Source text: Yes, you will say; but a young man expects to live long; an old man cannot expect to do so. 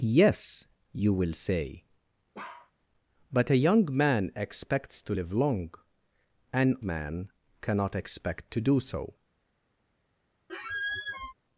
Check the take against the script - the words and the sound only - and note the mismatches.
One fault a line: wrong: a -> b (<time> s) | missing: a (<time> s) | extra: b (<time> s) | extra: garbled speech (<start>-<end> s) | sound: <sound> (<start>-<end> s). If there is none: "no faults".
sound: bark (2.3-2.7 s)
missing: old (6.8 s)
sound: squeak (10.5-11.3 s)